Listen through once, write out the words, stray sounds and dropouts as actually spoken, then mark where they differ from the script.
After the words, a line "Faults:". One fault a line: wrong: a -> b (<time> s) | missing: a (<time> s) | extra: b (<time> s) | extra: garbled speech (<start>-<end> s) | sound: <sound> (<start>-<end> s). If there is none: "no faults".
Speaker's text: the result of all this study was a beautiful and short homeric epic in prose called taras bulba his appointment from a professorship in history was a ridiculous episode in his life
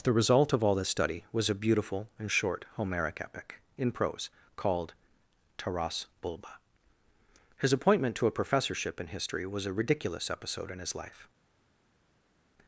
the result of all this study was a beautiful and short homeric epic in prose called taras bulba his appointment to a professorship in history was a ridiculous episode in his life
Faults:
wrong: from -> to (8.2 s)